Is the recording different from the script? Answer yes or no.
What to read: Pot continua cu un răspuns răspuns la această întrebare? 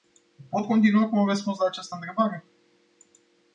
yes